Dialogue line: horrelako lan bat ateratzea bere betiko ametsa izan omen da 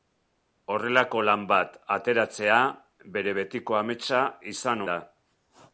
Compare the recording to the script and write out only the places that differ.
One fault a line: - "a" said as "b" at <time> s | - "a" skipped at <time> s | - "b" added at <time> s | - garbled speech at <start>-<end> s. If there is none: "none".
- "omen" skipped at 4.8 s